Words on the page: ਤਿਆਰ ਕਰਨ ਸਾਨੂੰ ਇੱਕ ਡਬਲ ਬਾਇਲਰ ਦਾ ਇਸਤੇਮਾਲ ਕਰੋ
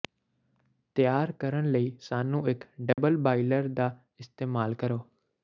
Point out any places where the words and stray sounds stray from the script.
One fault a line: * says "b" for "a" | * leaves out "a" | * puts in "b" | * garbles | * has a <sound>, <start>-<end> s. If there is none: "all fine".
* puts in "ਲਈ"
* has a dropout, 2.9-3.0 s